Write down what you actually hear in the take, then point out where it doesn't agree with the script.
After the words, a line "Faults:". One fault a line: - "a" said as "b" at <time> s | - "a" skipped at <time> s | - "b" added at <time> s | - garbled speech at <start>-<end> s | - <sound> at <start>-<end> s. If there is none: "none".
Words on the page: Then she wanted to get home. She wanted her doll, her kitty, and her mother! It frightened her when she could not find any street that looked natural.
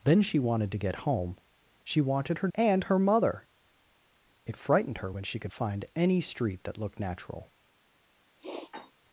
Then she wanted to get home. She wanted her and her mother! It frightened her when she could find any street that looked natural.
Faults:
- "doll her kitty" skipped at 2.5 s
- "not" skipped at 5.5 s
- sniff at 8.4-8.9 s